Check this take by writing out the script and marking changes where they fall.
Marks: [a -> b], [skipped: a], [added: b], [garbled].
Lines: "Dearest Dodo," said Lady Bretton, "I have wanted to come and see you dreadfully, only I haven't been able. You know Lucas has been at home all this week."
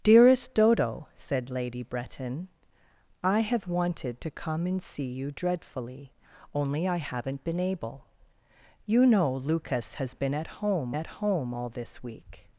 "Dearest Dodo," said Lady Bretton, "I have wanted to come and see you dreadfully, only I haven't been able. You know Lucas has been at home [added: at home] all this week."